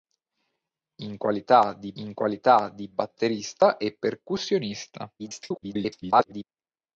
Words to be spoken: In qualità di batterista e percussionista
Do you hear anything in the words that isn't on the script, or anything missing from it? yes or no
yes